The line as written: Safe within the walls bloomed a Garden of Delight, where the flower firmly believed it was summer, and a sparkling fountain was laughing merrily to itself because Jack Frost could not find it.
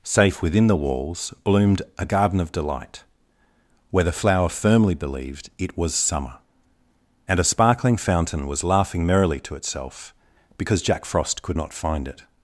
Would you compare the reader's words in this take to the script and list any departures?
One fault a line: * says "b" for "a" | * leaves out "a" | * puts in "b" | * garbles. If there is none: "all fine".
all fine